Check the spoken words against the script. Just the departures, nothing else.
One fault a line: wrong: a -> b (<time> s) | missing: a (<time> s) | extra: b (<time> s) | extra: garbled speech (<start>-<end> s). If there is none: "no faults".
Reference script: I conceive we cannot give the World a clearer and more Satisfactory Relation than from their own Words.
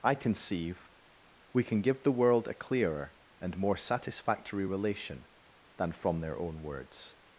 wrong: cannot -> can (1.6 s)